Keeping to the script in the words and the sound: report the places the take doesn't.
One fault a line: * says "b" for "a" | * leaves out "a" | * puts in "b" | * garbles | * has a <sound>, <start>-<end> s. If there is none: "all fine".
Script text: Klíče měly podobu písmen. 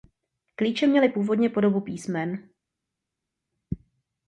* puts in "původně"